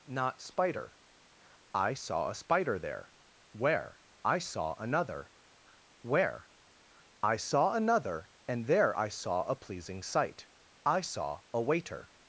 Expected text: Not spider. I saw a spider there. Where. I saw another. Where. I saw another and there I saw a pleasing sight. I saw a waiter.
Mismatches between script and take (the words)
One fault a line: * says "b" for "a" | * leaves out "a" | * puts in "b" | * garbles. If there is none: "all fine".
all fine